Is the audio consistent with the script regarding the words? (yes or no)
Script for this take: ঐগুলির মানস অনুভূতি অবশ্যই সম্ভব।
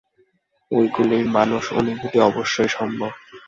yes